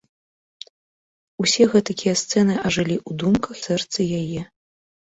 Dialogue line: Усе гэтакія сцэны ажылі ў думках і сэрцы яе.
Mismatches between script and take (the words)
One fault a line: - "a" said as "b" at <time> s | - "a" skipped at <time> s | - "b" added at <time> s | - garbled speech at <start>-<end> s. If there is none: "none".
- "і" skipped at 3.6 s